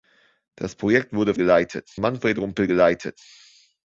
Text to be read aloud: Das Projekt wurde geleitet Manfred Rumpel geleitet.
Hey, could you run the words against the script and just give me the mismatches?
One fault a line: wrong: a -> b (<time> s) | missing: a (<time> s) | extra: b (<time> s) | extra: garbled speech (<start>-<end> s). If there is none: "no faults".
no faults